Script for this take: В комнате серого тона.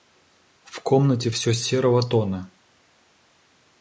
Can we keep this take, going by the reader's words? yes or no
no